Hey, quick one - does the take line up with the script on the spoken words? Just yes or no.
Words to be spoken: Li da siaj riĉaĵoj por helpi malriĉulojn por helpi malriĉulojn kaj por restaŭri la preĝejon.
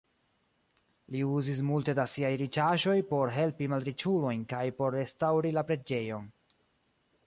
no